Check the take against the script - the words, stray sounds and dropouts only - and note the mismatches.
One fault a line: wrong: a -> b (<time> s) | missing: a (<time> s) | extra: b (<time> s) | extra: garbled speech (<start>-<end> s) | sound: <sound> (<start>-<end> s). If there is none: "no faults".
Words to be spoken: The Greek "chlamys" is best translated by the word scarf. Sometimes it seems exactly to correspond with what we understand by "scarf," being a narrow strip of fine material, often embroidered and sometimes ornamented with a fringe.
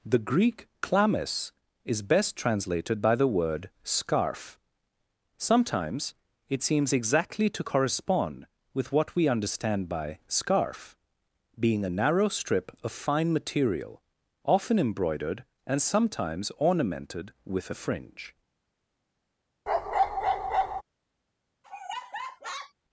sound: bark (19.7-20.8 s)
sound: laugh (21.6-22.7 s)